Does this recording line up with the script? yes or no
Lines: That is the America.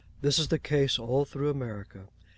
no